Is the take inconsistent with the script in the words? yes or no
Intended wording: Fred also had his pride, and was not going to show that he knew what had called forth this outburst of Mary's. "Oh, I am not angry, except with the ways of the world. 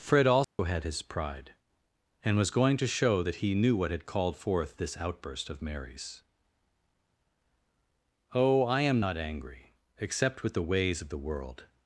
yes